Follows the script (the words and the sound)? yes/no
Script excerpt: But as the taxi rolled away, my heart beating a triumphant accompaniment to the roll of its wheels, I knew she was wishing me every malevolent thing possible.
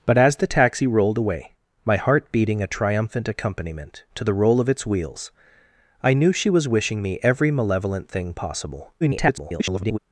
no